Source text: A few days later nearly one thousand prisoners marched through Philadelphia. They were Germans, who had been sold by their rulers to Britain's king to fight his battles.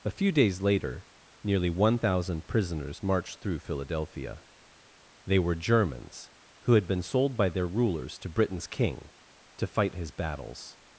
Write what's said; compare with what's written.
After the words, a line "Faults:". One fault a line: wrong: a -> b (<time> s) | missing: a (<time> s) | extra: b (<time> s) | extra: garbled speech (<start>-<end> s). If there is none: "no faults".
A few days later nearly one thousand prisoners marched through Philadelphia. They were Germans, who had been sold by their rulers to Britain's king to fight his battles.
Faults:
no faults